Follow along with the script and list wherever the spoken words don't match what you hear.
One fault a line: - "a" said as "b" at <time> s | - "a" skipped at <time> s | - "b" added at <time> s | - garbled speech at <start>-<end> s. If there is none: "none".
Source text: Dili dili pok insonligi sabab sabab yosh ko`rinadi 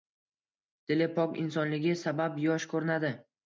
- "dili" skipped at 1.1 s
- "sabab" skipped at 2.4 s